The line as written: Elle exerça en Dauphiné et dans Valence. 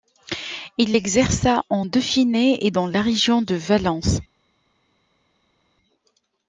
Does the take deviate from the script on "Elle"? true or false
true